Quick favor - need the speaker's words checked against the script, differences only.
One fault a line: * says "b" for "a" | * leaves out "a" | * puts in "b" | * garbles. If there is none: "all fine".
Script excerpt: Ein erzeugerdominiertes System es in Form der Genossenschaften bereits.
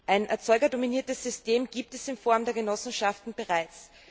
* puts in "gibt"